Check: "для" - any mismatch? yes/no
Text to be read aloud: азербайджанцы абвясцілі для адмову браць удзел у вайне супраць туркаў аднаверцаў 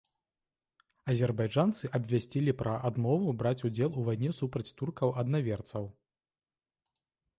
yes